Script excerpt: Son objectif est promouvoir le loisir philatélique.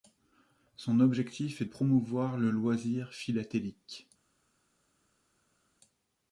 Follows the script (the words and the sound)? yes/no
yes